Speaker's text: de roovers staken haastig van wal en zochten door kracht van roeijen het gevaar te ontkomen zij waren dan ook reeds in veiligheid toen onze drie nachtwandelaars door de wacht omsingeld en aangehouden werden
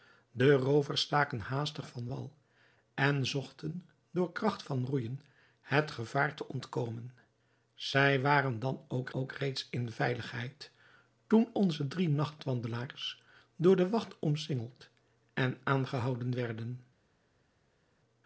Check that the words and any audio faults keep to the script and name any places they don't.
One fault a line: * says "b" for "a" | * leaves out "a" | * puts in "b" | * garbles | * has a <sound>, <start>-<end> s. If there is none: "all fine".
* puts in "ook"